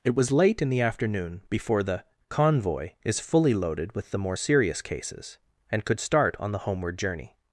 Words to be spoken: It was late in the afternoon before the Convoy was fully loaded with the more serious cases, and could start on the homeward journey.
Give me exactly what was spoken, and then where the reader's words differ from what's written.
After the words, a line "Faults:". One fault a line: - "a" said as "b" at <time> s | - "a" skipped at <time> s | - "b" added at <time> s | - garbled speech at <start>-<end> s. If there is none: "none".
It was late in the afternoon before the Convoy is fully loaded with the more serious cases, and could start on the homeward journey.
Faults:
- "was" said as "is" at 3.0 s